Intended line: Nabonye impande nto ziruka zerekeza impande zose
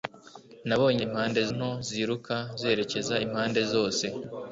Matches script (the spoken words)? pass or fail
pass